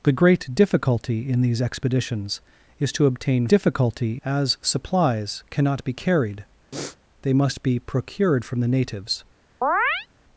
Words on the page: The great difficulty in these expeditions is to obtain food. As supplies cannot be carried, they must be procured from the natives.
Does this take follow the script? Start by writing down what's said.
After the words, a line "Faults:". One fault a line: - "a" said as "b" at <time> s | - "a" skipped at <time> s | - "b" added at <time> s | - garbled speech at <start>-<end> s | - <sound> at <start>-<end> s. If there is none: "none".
The great difficulty in these expeditions is to obtain difficulty. As supplies cannot be carried, they must be procured from the natives.
Faults:
- "food" said as "difficulty" at 3.5 s
- sniff at 6.7-7.0 s
- chirp at 9.6-10.1 s